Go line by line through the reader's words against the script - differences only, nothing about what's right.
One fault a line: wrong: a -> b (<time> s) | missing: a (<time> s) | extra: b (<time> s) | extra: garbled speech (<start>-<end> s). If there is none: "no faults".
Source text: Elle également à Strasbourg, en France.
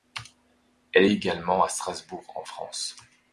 no faults